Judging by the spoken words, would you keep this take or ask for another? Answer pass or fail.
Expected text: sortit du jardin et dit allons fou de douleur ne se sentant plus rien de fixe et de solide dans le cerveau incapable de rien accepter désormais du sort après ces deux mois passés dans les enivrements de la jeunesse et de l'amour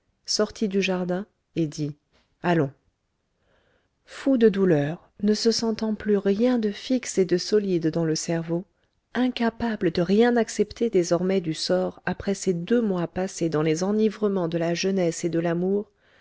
pass